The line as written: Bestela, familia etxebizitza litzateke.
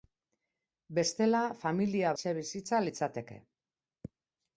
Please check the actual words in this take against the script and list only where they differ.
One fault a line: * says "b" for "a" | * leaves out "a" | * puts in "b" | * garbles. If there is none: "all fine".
all fine